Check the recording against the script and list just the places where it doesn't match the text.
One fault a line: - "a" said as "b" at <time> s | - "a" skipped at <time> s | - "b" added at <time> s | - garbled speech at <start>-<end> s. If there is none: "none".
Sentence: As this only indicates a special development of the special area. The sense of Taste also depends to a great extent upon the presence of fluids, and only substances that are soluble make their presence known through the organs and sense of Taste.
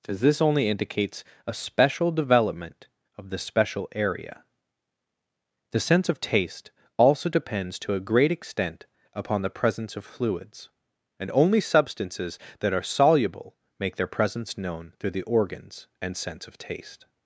none